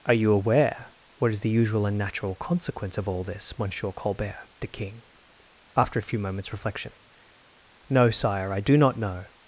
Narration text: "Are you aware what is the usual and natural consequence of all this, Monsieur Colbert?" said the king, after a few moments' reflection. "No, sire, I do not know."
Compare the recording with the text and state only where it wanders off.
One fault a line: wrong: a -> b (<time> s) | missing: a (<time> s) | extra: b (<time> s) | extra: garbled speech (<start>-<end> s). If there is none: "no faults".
missing: said (4.5 s)